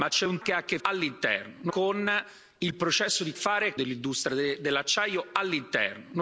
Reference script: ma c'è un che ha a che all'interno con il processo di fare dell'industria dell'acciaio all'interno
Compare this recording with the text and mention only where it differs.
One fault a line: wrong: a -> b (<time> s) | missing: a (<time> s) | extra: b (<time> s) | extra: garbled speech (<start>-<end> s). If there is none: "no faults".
no faults